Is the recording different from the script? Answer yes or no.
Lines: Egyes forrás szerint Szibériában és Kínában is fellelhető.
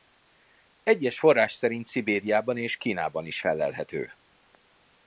no